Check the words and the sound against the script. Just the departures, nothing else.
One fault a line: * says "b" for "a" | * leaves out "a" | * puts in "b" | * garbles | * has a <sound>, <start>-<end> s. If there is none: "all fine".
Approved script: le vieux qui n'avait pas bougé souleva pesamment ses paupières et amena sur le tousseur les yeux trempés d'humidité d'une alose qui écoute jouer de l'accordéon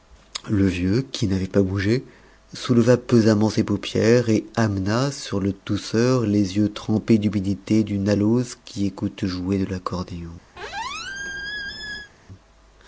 * has a squeak, 10.6-12.1 s